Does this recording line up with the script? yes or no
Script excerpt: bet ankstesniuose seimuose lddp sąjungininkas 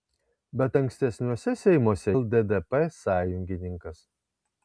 yes